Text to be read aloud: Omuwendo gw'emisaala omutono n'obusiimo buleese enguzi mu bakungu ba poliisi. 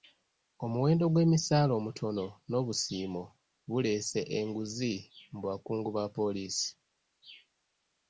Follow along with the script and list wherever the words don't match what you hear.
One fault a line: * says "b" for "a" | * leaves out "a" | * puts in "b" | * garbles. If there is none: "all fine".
all fine